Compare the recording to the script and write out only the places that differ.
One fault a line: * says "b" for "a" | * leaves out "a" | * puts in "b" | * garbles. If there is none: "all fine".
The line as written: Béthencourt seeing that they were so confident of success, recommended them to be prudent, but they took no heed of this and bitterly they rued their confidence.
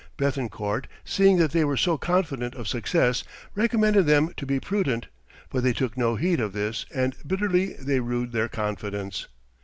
all fine